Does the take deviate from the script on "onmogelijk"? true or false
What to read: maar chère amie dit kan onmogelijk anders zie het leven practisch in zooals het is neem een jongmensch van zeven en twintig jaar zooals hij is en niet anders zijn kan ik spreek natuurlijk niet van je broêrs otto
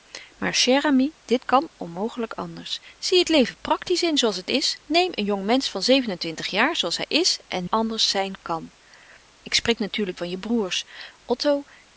false